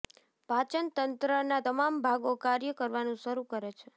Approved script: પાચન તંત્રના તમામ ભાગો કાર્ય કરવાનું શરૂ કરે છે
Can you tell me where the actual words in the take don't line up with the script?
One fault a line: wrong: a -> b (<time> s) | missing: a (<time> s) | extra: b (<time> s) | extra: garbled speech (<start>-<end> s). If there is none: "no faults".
no faults